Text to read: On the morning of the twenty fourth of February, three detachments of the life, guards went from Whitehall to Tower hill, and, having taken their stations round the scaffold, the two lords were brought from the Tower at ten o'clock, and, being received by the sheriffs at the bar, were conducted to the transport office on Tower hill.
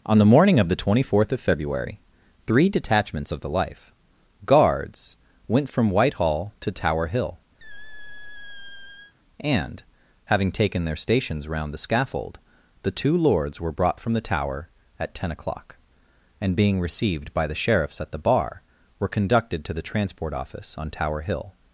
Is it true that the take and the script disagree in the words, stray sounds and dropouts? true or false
true